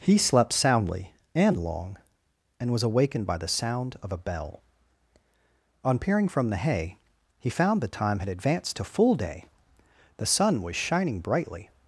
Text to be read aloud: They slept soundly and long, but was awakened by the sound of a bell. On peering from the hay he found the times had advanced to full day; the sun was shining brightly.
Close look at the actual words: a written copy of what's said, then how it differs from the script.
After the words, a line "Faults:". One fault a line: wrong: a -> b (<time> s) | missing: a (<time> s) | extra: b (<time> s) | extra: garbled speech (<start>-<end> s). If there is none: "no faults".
He slept soundly and long, and was awakened by the sound of a bell. On peering from the hay he found the time had advanced to full day; the sun was shining brightly.
Faults:
wrong: They -> He (0.0 s)
wrong: but -> and (2.6 s)
wrong: times -> time (7.9 s)